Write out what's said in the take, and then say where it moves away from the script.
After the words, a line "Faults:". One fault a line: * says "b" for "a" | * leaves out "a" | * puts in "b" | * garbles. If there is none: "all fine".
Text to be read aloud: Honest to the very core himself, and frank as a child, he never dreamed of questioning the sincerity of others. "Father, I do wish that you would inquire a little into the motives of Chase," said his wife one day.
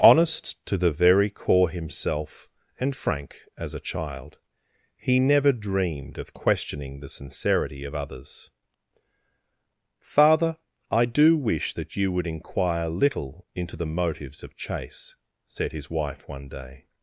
Honest to the very core himself, and frank as a child, he never dreamed of questioning the sincerity of others. "Father, I do wish that you would inquire little into the motives of Chase," said his wife one day.
Faults:
* leaves out "a"